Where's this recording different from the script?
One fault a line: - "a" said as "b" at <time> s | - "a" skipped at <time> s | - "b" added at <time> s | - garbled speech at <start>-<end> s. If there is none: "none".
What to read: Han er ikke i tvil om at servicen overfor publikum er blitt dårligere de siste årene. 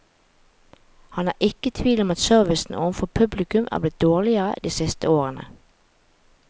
none